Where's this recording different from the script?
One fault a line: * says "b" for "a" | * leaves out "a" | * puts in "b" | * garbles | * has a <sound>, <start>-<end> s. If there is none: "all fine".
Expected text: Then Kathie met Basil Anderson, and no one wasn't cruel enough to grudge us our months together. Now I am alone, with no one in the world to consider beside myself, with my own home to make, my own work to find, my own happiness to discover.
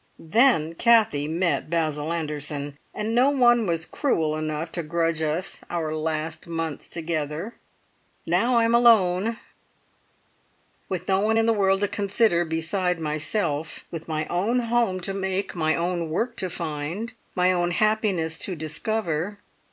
* says "was" for "wasn't"
* puts in "last"